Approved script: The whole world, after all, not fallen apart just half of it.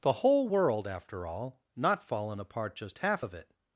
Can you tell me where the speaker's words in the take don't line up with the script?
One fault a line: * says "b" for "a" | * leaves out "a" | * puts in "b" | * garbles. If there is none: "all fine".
all fine